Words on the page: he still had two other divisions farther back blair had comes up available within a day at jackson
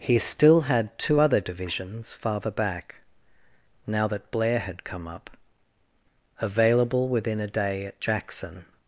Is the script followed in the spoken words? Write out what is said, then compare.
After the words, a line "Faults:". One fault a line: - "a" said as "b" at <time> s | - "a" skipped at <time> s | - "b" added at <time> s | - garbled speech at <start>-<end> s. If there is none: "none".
he still had two other divisions farther back now that blair had come up available within a day at jackson
Faults:
- "now that" added at 3.8 s
- "comes" said as "come" at 4.8 s